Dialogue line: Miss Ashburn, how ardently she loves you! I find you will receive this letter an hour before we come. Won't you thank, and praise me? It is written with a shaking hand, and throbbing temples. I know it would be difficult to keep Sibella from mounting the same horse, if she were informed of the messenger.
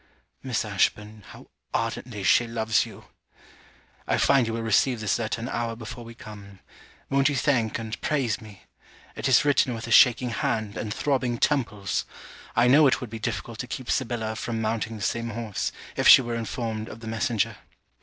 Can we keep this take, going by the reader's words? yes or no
yes